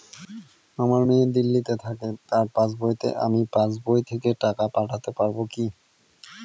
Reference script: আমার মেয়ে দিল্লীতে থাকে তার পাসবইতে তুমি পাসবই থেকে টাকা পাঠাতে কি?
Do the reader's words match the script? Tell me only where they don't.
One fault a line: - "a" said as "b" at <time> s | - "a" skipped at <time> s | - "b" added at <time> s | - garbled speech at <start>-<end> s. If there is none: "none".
- "তুমি" said as "আমি" at 3.2 s
- "পারব" added at 5.2 s